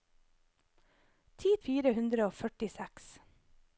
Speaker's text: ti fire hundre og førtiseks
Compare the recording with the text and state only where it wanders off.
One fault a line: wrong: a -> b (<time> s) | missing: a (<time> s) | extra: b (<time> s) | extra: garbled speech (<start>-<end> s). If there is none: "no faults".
no faults